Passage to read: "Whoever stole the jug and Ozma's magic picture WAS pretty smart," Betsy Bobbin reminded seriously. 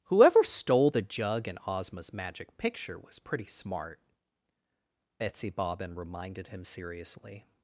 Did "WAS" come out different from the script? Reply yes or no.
no